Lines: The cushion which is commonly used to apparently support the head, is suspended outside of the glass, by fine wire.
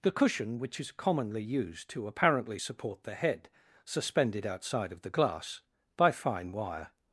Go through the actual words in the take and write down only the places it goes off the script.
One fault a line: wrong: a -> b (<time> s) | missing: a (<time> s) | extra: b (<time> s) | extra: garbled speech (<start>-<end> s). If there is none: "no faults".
missing: is (3.5 s)